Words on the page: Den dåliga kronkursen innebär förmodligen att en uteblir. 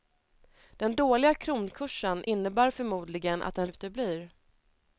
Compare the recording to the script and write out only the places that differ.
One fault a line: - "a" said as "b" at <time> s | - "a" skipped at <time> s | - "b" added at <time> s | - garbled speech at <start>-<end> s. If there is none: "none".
none